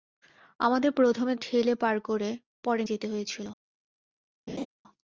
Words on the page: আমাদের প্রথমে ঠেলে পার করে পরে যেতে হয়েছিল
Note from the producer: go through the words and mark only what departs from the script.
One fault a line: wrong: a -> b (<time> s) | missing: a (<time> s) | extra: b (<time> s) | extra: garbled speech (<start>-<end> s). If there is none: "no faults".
no faults